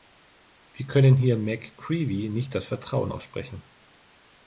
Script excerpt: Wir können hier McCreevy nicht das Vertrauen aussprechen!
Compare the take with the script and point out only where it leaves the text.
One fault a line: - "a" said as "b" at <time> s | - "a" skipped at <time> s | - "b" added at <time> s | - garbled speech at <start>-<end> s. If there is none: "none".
none